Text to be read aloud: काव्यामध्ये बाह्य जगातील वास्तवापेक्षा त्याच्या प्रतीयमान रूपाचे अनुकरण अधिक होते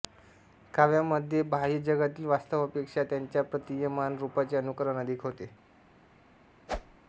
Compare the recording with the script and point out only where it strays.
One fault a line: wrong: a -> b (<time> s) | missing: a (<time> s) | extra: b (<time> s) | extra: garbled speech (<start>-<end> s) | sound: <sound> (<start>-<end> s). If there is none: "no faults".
sound: whoosh (6.7-7.0 s)